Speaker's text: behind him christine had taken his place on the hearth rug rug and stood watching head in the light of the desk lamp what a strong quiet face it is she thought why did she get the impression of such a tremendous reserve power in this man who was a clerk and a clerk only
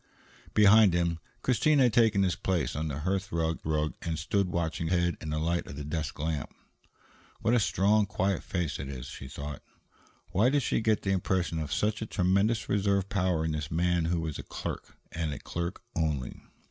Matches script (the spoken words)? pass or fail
pass